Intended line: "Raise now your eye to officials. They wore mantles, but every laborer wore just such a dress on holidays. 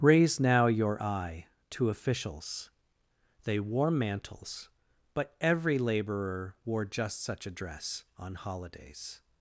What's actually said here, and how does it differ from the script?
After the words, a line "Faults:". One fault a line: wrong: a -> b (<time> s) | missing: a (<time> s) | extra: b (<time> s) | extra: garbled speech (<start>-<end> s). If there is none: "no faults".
"Raise now your eye to officials. They wore mantles, but every laborer wore just such a dress on holidays.
Faults:
no faults